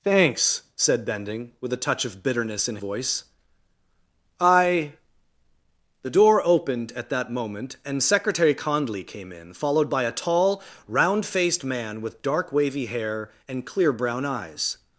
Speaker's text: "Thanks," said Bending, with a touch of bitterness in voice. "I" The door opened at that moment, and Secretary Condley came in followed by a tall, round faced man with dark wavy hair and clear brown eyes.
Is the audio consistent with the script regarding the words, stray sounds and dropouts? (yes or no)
yes